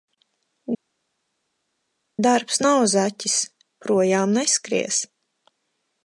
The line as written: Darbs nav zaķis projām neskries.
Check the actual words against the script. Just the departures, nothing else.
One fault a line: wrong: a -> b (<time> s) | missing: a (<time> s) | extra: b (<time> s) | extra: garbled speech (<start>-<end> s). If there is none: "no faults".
no faults